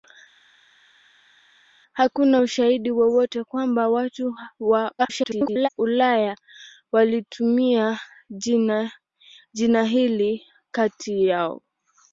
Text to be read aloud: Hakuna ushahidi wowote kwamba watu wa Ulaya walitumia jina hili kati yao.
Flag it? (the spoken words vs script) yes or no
yes